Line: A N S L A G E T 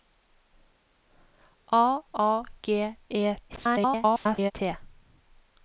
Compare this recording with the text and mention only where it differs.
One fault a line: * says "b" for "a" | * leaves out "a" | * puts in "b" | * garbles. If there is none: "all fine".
* leaves out "N S L"
* garbles